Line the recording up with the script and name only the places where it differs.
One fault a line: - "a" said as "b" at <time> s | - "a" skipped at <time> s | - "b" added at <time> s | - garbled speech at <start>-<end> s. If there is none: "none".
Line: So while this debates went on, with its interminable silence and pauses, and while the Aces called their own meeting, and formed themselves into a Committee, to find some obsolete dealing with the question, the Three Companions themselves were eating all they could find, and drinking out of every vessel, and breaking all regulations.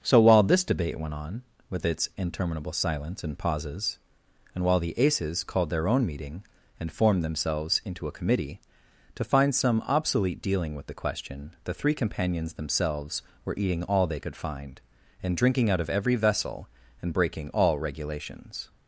- "debates" said as "debate" at 0.6 s